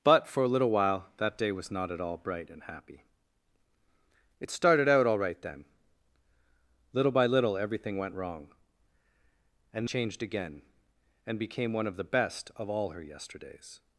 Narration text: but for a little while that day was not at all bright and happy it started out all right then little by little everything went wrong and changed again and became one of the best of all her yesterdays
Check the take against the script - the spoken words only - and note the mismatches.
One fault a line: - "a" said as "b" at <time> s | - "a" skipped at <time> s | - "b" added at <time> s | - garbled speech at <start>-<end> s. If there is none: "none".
none